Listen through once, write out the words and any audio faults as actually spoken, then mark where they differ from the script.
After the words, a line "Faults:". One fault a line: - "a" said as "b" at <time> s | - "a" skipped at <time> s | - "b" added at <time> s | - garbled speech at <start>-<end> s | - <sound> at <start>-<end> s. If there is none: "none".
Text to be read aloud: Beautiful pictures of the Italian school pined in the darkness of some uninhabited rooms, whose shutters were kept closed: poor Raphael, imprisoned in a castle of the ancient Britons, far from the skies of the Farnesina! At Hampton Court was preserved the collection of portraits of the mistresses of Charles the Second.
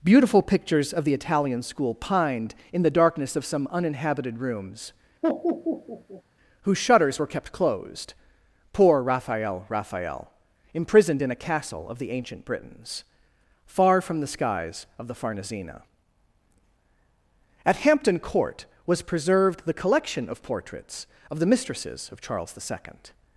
Beautiful pictures of the Italian school pined in the darkness of some uninhabited rooms, whose shutters were kept closed: poor Raphael Raphael, imprisoned in a castle of the ancient Britons, far from the skies of the Farnesina! At Hampton Court was preserved the collection of portraits of the mistresses of Charles the Second.
Faults:
- laugh at 5.2-6.2 s
- "Raphael" added at 9.7 s